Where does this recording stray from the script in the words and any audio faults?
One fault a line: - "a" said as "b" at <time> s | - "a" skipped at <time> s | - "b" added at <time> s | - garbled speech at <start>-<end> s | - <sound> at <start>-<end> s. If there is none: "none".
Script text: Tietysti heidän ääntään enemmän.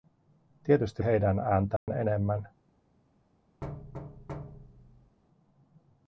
- dropout at 1.8-1.9 s
- thud at 3.6-5.2 s